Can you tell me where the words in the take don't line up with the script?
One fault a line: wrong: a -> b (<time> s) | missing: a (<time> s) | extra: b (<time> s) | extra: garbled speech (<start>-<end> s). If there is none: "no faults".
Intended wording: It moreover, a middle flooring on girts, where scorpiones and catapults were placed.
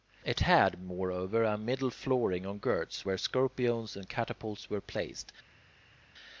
extra: had (0.4 s)